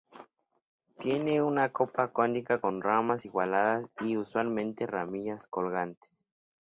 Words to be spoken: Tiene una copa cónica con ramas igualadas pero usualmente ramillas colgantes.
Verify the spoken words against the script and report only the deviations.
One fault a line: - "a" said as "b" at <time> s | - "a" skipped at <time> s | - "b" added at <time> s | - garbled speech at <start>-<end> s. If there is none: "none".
- "pero" said as "y" at 4.0 s